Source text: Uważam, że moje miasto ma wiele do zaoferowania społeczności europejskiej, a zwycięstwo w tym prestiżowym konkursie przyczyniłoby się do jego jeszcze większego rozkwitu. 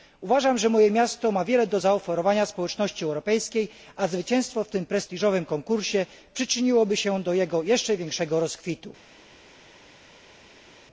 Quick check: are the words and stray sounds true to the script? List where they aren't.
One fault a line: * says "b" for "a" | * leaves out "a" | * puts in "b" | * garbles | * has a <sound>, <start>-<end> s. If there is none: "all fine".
all fine